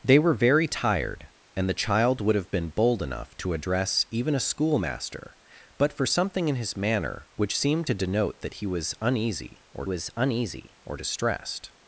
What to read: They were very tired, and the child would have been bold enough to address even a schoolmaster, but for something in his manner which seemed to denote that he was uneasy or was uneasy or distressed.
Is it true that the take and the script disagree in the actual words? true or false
false